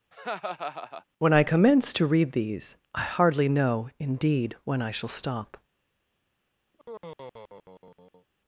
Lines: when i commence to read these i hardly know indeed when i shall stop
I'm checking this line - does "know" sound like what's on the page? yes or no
yes